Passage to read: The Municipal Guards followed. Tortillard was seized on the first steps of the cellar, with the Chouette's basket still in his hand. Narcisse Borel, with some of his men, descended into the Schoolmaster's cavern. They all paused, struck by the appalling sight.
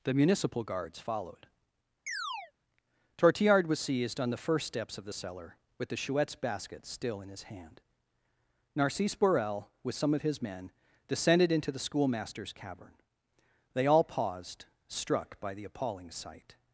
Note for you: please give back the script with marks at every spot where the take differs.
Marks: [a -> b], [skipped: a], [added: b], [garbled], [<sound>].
The Municipal Guards followed. [chirp] Tortillard was seized on the first steps of the cellar, with the Chouette's basket still in his hand. Narcisse Borel, with some of his men, descended into the Schoolmaster's cavern. They all paused, struck by the appalling sight.